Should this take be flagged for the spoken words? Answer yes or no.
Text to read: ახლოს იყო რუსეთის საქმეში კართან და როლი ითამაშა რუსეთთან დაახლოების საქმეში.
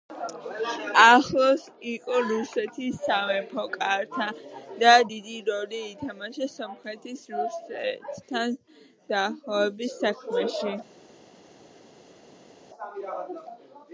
yes